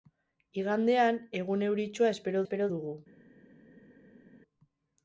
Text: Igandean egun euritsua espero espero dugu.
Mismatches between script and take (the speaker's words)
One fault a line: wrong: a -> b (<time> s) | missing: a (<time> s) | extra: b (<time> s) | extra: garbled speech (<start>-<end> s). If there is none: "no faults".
no faults